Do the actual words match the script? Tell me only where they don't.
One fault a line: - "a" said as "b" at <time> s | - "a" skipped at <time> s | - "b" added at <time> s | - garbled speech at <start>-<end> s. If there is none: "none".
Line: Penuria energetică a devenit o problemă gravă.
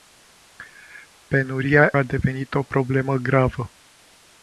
- "energetică" skipped at 1.9 s